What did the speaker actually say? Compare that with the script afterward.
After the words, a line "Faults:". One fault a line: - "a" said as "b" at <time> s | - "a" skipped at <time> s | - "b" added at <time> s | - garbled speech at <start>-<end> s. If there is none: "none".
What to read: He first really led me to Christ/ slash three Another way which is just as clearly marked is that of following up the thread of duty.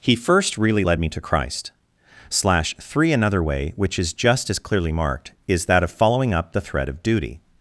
He first really led me to Christ/ slash three Another way which is just as clearly marked is that of following up the thread of duty.
Faults:
none